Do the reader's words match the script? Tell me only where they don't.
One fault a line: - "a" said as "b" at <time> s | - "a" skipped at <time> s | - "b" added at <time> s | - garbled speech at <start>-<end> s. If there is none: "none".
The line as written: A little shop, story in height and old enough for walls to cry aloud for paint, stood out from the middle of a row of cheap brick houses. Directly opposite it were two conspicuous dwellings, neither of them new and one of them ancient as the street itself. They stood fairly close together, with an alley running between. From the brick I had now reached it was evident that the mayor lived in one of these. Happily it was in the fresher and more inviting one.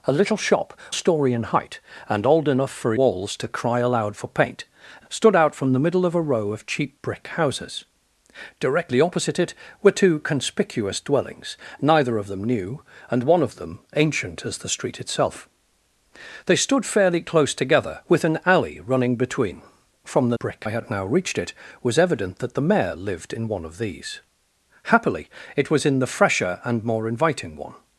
none